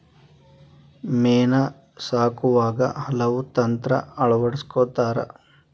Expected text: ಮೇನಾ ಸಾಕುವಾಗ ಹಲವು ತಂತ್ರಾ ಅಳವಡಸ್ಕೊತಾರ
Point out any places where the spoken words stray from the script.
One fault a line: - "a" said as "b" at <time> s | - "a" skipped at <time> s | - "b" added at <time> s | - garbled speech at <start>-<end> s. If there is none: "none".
none